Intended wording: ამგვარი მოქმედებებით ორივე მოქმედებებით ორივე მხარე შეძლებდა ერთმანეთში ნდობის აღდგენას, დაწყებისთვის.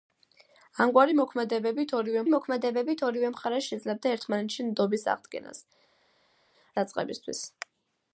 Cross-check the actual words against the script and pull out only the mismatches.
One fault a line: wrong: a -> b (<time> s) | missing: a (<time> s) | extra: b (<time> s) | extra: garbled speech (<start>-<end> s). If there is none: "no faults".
no faults